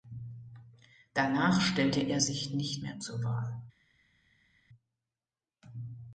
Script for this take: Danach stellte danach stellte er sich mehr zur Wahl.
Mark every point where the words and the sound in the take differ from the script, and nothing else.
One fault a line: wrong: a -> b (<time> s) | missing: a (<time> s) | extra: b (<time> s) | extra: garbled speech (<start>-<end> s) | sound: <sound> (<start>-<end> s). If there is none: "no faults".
missing: danach stellte (2.0 s)
extra: nicht (2.5 s)